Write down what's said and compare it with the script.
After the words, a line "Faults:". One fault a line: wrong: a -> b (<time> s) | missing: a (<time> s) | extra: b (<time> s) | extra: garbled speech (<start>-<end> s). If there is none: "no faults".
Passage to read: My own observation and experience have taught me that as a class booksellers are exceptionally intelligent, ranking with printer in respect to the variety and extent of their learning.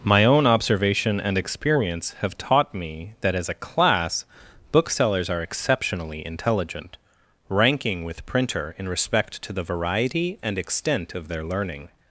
My own observation and experience have taught me that as a class booksellers are exceptionally intelligent, ranking with printer in respect to the variety and extent of their learning.
Faults:
no faults